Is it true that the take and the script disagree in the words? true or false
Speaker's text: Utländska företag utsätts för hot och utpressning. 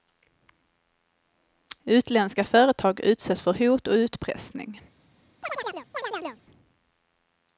false